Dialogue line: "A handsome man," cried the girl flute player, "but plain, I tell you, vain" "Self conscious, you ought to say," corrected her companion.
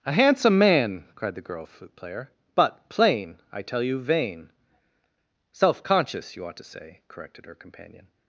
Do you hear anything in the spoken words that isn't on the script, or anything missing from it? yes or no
no